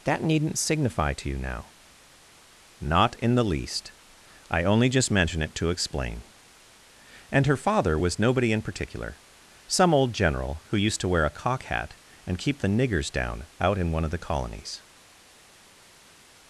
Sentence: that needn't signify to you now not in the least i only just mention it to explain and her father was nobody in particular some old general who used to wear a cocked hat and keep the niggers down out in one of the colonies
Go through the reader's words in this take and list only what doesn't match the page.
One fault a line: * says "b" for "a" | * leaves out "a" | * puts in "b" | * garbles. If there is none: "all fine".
* says "cock" for "cocked"